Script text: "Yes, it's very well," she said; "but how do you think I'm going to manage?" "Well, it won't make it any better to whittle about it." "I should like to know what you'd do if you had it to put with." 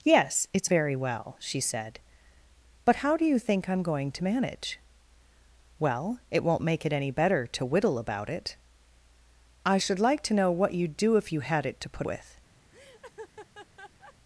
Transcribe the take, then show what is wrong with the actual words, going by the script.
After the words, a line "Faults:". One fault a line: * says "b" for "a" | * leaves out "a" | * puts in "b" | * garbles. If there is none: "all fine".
"Yes, it's very well," she said; "but how do you think I'm going to manage?" "Well, it won't make it any better to whittle about it." "I should like to know what you'd do if you had it to put with."
Faults:
all fine